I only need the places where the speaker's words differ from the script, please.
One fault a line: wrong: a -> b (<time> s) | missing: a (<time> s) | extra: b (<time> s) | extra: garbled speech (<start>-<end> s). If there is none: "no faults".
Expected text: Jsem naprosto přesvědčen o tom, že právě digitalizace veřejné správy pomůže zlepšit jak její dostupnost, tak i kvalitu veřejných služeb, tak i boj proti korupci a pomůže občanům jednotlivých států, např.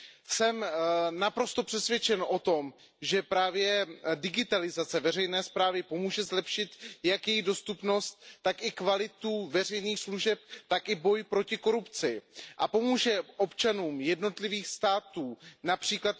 no faults